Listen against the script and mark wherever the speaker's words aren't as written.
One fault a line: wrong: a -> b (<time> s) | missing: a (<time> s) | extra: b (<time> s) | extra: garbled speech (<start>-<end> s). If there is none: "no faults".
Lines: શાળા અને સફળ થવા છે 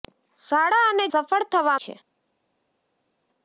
no faults